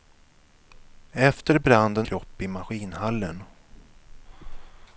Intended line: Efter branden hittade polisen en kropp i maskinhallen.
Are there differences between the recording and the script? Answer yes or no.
yes